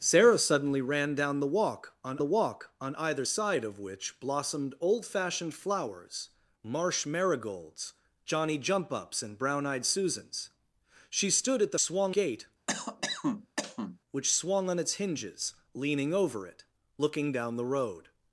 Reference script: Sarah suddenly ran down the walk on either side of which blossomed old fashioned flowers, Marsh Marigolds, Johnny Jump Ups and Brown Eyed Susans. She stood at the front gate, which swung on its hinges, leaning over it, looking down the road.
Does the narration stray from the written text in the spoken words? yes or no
yes